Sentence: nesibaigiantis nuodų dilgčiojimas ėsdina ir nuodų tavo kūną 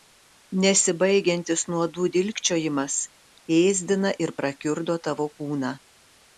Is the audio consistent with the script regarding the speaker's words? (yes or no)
no